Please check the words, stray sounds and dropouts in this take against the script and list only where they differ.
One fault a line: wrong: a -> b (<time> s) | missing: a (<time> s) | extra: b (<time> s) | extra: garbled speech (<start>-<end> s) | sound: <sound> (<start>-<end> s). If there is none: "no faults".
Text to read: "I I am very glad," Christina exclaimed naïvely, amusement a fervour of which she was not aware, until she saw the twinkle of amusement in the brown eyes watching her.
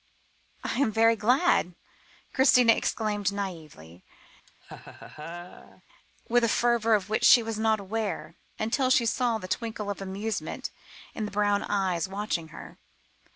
missing: I (0.8 s)
sound: laugh (4.5-5.8 s)
wrong: amusement -> with (6.3 s)